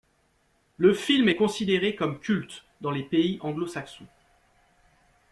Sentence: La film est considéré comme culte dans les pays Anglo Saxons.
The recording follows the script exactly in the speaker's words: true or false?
false